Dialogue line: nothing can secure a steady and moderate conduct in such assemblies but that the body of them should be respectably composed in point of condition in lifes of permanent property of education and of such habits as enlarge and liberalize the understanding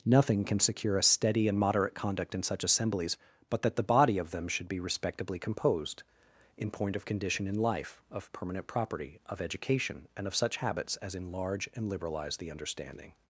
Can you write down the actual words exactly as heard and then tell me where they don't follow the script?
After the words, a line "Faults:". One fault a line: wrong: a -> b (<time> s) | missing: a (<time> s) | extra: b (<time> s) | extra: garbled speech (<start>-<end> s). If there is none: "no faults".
nothing can secure a steady and moderate conduct in such assemblies but that the body of them should be respectably composed in point of condition in life of permanent property of education and of such habits as enlarge and liberalize the understanding
Faults:
wrong: lifes -> life (7.6 s)